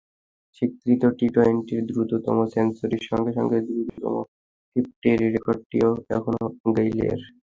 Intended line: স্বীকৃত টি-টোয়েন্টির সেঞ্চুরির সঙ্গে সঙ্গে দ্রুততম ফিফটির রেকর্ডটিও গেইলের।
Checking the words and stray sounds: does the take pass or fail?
fail